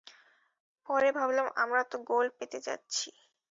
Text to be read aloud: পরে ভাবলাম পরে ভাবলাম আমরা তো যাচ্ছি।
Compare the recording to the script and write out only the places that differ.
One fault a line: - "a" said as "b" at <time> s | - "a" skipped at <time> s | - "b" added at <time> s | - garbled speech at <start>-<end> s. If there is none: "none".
- "পরে ভাবলাম আমরা তো" said as "আমরা তো গোল্ড পেতে" at 1.6 s